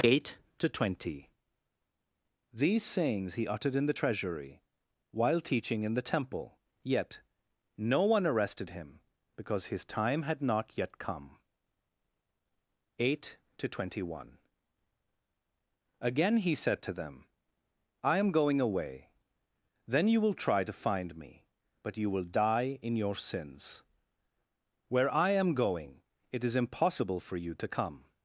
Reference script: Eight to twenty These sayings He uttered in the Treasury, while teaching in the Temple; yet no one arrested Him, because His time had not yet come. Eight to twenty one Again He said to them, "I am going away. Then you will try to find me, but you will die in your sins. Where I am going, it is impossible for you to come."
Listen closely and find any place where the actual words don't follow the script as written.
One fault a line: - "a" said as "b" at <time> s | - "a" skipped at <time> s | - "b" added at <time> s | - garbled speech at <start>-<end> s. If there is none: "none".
none